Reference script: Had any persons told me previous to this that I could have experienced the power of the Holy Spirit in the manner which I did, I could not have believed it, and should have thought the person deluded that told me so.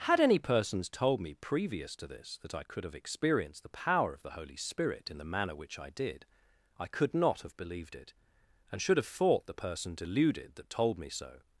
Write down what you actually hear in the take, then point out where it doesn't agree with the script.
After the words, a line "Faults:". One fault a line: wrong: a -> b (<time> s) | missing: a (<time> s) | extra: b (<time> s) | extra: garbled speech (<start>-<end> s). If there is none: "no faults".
Had any persons told me previous to this that I could have experienced the power of the Holy Spirit in the manner which I did, I could not have believed it, and should have thought the person deluded that told me so.
Faults:
no faults